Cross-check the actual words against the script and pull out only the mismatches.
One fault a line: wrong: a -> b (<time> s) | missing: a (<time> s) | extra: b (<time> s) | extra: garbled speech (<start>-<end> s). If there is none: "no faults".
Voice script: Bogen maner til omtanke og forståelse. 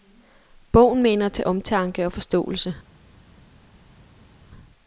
no faults